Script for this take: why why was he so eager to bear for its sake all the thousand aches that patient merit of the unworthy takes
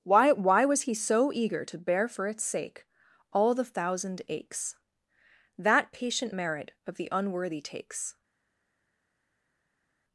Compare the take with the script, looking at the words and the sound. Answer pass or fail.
pass